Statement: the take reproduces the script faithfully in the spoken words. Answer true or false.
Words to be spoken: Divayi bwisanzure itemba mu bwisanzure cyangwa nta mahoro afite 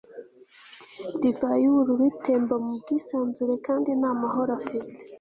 false